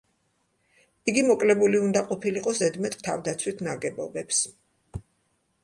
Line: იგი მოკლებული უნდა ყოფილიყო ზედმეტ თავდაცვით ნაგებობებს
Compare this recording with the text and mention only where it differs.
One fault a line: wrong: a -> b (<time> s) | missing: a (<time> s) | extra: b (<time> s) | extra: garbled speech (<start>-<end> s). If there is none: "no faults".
no faults